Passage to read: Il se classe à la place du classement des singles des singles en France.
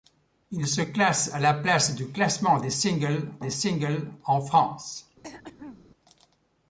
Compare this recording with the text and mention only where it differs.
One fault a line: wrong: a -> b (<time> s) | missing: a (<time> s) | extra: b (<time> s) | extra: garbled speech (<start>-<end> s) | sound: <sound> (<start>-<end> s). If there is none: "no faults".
sound: throat clearing (5.2-5.9 s)